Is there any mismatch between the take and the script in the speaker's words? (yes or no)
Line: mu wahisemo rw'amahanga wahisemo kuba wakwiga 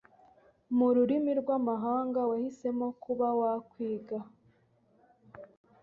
yes